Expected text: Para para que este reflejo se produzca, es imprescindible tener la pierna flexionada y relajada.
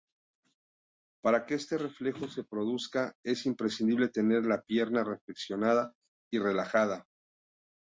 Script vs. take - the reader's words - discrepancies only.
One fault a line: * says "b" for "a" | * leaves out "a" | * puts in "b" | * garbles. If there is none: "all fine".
* leaves out "para"